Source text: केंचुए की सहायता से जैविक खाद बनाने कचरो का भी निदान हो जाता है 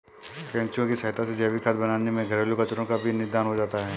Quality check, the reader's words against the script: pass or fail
fail